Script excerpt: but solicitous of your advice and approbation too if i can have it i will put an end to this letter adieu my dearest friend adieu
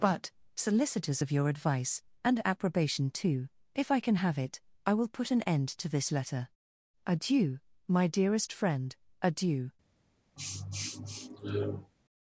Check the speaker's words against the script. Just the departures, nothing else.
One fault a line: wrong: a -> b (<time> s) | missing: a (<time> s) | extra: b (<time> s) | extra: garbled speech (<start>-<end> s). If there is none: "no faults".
no faults